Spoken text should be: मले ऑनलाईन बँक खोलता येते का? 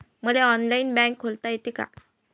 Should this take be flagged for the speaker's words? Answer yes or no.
no